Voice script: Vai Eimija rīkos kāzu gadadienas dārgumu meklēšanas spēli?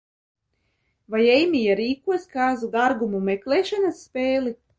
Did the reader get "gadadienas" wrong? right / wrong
wrong